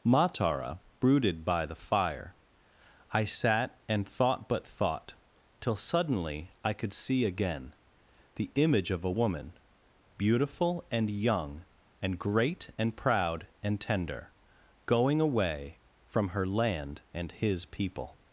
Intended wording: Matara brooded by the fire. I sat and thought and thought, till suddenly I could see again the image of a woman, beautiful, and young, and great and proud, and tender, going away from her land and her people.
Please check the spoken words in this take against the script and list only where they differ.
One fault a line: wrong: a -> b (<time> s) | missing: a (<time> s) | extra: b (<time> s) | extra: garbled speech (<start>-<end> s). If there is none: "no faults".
wrong: and -> but (4.5 s)
wrong: her -> his (17.3 s)